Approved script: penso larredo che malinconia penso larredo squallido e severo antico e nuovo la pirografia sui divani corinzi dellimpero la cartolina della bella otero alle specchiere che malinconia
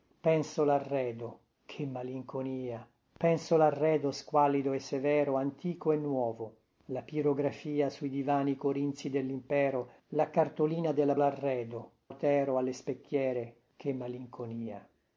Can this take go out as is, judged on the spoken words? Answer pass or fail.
fail